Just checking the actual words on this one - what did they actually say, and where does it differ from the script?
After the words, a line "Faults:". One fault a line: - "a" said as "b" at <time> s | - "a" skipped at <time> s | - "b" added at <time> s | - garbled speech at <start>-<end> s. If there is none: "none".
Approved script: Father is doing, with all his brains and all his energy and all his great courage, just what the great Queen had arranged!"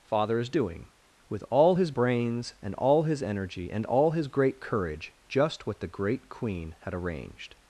Father is doing, with all his brains and all his energy and all his great courage, just what the great Queen had arranged!"
Faults:
none